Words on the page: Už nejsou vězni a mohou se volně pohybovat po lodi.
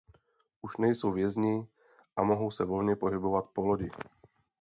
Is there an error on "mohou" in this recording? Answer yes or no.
no